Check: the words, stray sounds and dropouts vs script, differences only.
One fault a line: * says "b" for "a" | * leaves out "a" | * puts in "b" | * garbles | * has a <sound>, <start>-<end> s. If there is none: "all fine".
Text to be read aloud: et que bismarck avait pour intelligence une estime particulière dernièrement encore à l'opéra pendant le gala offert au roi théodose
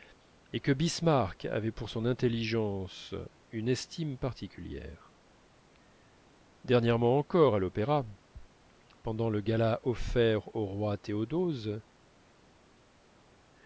* puts in "son"